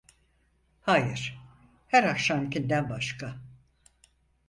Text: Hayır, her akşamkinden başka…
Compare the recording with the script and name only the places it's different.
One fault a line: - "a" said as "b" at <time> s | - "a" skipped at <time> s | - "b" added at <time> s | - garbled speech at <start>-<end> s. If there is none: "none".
none